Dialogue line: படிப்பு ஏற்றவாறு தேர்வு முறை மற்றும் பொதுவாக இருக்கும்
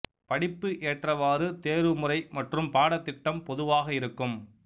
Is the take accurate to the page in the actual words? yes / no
no